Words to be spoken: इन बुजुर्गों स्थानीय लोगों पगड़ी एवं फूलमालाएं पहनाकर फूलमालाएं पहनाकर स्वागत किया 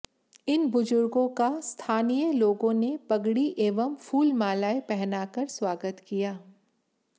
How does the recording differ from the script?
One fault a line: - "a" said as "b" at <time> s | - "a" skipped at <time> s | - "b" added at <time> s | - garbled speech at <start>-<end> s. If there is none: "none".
- "का" added at 1.4 s
- "ने" added at 2.7 s
- "फूलमालाएं पहनाकर" skipped at 5.5 s